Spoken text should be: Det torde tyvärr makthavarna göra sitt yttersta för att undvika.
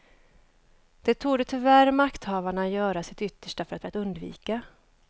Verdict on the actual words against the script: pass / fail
fail